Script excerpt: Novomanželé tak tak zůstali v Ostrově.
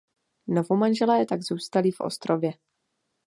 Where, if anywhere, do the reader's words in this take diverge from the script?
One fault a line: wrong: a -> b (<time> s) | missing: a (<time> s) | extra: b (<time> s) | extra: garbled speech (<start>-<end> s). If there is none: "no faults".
missing: tak (1.4 s)